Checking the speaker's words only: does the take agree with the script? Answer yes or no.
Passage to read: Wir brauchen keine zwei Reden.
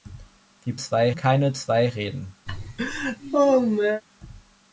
no